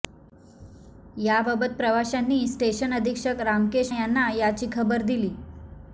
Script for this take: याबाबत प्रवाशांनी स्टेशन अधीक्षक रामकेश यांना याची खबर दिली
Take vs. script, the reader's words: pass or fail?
pass